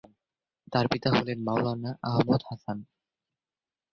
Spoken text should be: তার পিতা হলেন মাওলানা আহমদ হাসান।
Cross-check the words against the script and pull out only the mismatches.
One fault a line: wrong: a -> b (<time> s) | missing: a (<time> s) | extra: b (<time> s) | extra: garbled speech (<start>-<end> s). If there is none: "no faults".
no faults